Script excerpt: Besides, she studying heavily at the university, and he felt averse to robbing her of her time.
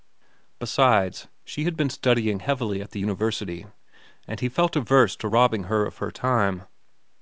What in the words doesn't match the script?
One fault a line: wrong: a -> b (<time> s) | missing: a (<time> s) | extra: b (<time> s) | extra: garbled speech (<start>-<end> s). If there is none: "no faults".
extra: had been (1.6 s)